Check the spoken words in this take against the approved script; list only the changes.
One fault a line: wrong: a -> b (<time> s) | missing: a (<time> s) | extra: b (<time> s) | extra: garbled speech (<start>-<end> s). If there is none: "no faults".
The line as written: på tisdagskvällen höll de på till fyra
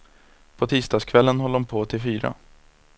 no faults